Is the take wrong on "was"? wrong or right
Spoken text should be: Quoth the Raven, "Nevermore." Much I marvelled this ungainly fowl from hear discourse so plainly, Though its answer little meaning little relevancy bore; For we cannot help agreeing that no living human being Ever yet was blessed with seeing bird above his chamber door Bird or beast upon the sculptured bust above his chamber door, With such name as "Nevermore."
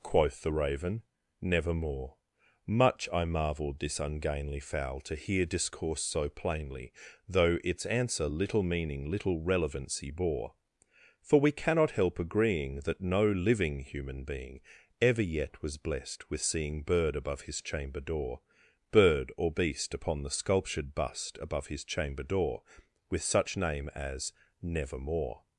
right